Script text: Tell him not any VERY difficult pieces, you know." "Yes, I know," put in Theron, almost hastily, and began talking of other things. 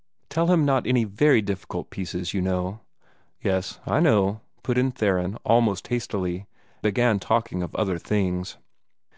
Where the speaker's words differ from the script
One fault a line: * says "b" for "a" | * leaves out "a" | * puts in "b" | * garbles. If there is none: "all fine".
* leaves out "and"